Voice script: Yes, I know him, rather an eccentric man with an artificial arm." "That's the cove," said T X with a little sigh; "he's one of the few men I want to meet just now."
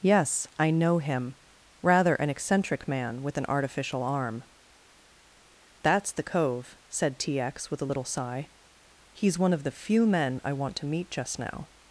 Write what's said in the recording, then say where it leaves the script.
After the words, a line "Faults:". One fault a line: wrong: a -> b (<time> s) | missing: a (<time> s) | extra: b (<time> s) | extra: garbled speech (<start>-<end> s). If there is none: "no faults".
Yes, I know him, rather an eccentric man with an artificial arm." "That's the cove," said T X with a little sigh; "he's one of the few men I want to meet just now."
Faults:
no faults